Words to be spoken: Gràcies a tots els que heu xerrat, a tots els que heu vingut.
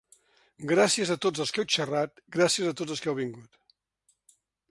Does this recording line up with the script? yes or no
no